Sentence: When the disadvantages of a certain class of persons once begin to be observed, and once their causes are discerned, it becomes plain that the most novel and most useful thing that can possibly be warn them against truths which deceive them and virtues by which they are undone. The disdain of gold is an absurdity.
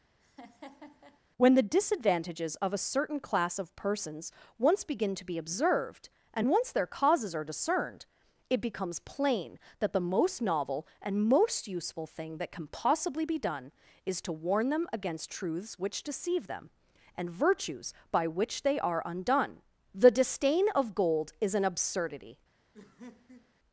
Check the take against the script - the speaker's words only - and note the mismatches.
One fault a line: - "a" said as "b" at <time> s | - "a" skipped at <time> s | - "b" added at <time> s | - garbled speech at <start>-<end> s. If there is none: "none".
- "done is to" added at 13.4 s